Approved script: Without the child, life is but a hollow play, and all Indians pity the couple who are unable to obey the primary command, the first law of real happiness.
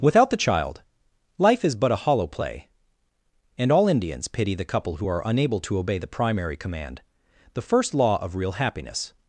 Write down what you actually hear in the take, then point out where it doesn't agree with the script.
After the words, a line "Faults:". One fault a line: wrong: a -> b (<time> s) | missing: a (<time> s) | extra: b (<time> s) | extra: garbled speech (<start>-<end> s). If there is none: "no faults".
Without the child, life is but a hollow play, and all Indians pity the couple who are unable to obey the primary command, the first law of real happiness.
Faults:
no faults